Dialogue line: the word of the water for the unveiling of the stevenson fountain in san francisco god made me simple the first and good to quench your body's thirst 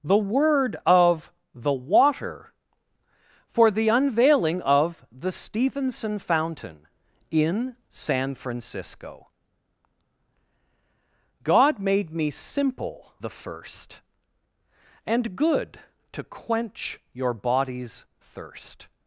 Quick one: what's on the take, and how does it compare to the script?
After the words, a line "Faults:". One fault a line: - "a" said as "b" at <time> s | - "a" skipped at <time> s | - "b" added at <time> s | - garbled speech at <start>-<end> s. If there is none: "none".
the word of the water for the unveiling of the stevenson fountain in san francisco god made me simple the first and good to quench your body's thirst
Faults:
none